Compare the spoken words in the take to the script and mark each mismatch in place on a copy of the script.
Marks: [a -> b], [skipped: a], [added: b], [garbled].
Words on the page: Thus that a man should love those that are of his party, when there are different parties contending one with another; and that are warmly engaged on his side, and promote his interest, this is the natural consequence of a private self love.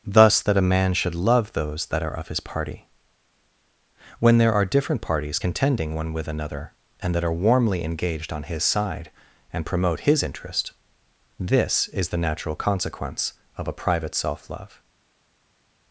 Thus that a man should love those that are of his party, when there are different parties contending one with another; and that are warmly engaged on his side, and promote his interest, this is the natural consequence of a private self love.